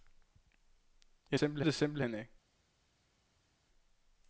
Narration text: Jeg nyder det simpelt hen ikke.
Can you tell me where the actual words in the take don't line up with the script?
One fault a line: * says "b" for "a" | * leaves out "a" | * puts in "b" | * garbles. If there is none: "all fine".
* says "simpelt" for "nyder"